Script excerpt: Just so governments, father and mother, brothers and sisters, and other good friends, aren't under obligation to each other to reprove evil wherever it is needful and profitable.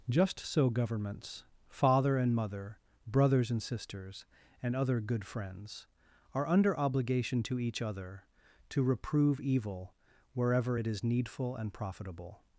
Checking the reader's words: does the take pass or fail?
fail